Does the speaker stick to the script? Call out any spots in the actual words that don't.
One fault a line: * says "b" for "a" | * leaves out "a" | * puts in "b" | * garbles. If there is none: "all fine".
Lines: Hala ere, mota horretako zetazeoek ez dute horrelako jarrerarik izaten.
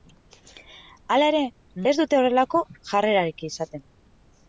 * leaves out "mota horretako zetazeoek"